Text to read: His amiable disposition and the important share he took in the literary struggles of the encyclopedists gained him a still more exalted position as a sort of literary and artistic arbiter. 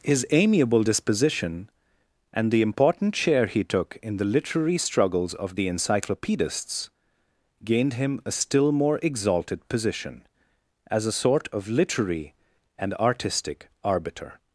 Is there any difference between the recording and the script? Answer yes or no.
no